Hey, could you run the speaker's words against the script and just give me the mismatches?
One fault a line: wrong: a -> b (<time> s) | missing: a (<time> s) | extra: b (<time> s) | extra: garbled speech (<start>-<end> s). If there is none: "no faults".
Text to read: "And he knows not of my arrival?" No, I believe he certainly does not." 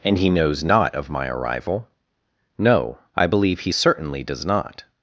no faults